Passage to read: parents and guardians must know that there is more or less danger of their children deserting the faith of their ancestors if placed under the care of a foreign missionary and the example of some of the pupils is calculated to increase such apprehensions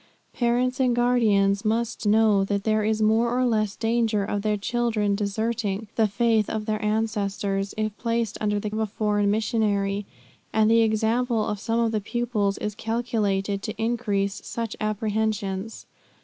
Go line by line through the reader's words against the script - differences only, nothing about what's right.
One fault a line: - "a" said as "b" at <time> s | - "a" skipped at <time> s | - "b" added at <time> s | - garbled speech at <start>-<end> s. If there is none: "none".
- "care" skipped at 8.7 s